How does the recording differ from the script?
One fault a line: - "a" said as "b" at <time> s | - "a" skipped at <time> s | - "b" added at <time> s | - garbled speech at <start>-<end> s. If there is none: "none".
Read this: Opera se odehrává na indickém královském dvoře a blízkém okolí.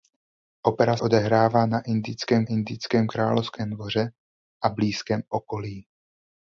- "se" skipped at 1.0 s
- "indickém" added at 2.5 s